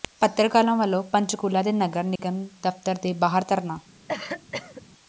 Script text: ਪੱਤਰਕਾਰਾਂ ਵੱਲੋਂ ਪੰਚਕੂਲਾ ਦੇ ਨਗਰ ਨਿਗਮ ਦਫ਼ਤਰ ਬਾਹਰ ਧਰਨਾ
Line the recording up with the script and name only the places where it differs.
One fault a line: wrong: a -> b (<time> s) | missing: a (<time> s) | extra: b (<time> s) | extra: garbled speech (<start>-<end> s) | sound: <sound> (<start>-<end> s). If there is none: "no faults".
sound: dropout (2.2-2.2 s)
extra: ਦੇ (3.0 s)
sound: cough (4.1-4.9 s)